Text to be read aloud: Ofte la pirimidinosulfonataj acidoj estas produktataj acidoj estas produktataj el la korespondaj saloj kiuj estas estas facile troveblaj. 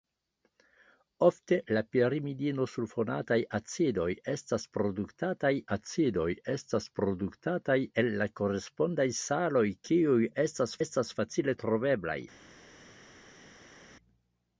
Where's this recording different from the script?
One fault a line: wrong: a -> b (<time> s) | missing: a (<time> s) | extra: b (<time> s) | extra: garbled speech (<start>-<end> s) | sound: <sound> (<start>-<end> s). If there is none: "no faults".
no faults